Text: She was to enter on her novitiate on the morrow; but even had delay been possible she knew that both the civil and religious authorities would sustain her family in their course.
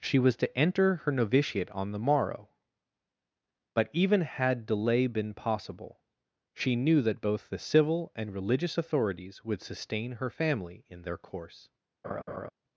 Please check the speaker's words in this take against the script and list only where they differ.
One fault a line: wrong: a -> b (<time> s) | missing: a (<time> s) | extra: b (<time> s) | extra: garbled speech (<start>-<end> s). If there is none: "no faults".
missing: on (1.0 s)